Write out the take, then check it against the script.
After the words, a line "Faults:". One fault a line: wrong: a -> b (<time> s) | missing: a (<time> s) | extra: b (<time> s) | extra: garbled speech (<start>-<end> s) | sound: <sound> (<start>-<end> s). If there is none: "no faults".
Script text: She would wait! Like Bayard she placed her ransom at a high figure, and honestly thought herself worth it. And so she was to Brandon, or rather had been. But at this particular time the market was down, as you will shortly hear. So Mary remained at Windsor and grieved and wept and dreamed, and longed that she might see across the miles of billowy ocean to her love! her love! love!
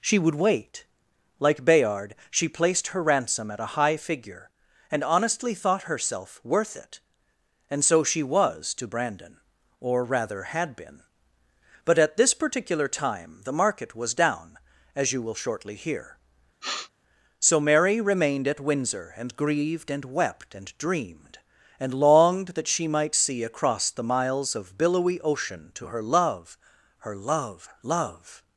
She would wait! Like Bayard she placed her ransom at a high figure, and honestly thought herself worth it. And so she was to Brandon, or rather had been. But at this particular time the market was down, as you will shortly hear. So Mary remained at Windsor and grieved and wept and dreamed, and longed that she might see across the miles of billowy ocean to her love! her love! love!
Faults:
sound: sniff (16.6-16.9 s)